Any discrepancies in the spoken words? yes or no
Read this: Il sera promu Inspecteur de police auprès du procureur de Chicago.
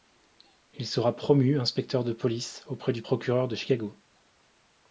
no